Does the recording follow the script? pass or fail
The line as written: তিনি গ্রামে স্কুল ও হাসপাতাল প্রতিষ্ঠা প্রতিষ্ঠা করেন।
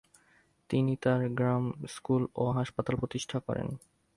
fail